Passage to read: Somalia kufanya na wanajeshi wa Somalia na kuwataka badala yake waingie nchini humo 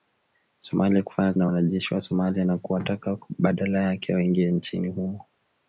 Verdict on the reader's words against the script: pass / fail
pass